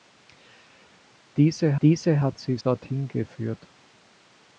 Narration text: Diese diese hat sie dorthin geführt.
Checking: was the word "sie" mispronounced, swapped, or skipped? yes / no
no